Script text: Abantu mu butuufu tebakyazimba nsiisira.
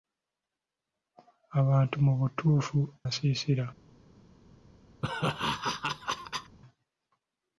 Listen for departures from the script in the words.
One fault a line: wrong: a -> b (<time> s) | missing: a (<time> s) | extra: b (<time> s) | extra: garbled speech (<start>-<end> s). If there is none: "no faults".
missing: tebakyazimba (2.8 s)